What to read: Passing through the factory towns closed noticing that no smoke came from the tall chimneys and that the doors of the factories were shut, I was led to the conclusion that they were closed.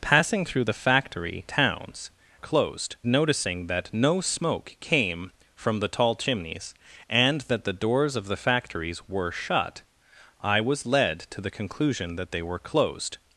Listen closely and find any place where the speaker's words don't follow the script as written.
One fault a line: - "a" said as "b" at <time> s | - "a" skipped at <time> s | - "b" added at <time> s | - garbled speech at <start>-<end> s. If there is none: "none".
none